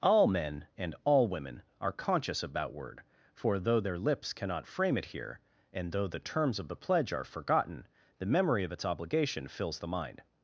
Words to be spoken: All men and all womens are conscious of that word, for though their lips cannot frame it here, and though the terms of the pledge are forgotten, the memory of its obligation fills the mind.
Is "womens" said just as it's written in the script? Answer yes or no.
no